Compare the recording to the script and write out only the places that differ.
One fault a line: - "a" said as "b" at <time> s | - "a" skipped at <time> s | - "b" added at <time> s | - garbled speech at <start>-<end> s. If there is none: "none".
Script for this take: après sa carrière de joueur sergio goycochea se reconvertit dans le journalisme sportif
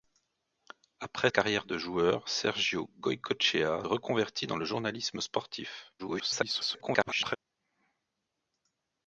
- "sa" skipped at 1.3 s
- "se" skipped at 3.8 s
- garbled speech at 6.0-7.4 s